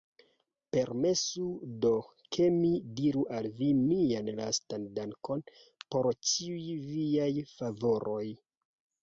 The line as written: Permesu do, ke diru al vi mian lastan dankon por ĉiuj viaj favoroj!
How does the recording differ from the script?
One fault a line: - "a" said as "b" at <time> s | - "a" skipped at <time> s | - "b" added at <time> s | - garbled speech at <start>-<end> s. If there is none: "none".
- "mi" added at 2.5 s